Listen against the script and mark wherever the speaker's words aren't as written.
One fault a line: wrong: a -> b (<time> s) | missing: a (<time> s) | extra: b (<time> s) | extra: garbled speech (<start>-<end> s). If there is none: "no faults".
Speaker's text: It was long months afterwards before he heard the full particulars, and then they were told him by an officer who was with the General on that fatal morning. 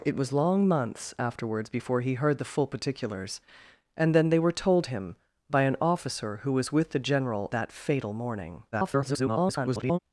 missing: on (7.5 s)
extra: garbled speech (8.7-10.0 s)